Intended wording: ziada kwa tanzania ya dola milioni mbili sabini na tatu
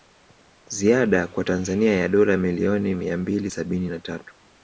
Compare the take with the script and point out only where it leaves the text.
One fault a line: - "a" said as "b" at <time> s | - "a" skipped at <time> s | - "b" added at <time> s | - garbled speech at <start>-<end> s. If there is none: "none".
- "mia" added at 2.9 s